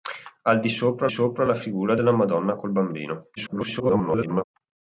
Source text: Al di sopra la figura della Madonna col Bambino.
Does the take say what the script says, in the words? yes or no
no